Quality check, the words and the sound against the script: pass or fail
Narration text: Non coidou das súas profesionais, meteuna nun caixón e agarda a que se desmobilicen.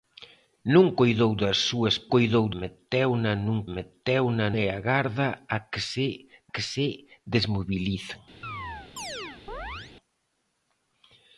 fail